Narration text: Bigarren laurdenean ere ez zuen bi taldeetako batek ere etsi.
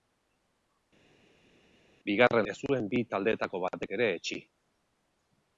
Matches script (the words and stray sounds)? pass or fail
fail